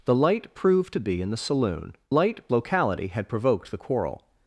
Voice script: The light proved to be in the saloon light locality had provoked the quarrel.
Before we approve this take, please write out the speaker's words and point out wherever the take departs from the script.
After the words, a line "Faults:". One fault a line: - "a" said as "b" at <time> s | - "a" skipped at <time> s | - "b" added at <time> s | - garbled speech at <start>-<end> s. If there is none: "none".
The light proved to be in the saloon light locality had provoked the quarrel.
Faults:
none